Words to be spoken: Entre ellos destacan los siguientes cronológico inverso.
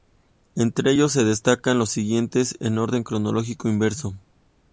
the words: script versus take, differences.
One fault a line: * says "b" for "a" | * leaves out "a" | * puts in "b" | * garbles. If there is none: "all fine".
* puts in "se"
* puts in "en orden"